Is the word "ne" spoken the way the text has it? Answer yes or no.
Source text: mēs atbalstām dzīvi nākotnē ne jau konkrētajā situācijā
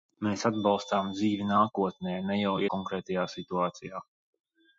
yes